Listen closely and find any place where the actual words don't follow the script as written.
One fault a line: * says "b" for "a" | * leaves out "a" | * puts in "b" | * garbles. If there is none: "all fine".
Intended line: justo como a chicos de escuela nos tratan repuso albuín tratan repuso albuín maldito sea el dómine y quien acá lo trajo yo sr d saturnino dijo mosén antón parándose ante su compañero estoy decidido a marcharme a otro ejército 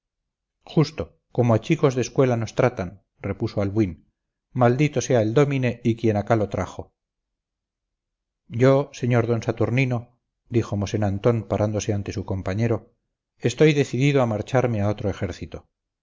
* leaves out "tratan repuso albuín"